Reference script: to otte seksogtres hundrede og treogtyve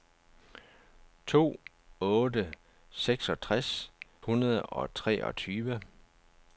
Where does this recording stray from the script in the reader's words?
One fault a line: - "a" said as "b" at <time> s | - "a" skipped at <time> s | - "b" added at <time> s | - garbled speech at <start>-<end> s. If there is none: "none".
none